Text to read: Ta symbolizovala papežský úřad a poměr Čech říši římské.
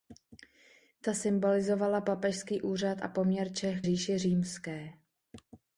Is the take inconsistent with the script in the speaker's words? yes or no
no